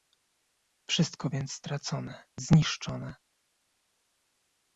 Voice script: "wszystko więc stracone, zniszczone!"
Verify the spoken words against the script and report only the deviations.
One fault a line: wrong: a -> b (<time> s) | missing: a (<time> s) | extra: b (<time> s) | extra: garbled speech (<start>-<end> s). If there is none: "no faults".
no faults